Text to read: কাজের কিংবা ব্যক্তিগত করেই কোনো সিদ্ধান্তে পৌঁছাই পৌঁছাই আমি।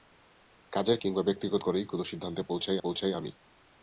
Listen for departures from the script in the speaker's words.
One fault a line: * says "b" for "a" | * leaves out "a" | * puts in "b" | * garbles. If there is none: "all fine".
all fine